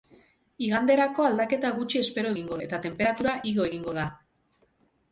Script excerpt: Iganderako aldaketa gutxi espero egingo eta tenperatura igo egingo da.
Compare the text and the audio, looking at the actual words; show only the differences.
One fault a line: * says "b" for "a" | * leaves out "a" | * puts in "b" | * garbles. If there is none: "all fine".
all fine